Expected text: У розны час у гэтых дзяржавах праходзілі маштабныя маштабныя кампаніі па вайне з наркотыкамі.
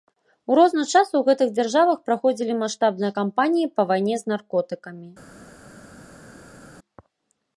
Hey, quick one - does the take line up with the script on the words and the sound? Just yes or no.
no